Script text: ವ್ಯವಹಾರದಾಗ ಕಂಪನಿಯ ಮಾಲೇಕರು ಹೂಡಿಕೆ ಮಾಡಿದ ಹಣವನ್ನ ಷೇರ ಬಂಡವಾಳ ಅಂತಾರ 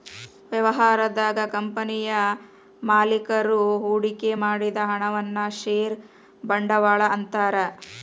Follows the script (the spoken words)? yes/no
yes